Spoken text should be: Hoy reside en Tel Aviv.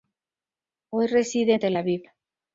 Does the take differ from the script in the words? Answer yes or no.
no